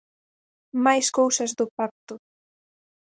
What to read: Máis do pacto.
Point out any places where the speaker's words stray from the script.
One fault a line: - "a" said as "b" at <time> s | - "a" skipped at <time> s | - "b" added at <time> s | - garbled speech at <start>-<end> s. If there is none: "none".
- "cousas" added at 1.2 s